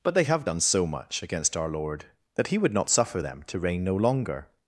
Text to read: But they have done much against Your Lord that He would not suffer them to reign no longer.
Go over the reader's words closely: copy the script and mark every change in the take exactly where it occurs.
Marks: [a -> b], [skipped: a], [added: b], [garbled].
But they have done [added: so] much against [Your -> Our] Lord that He would not suffer them to reign no longer.